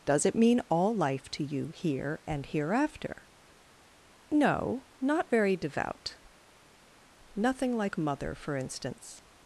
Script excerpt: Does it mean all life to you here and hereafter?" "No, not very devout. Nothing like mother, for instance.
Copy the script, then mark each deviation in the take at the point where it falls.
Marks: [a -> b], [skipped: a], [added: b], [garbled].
Does it mean all life to you here and hereafter?" "No, not very devout. Nothing like mother, for instance.